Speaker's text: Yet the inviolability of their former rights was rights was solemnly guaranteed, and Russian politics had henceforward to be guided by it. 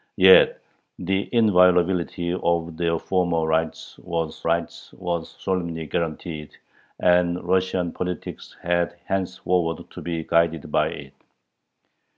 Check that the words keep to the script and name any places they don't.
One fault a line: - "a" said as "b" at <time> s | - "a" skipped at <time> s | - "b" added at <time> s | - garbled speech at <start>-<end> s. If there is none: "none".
none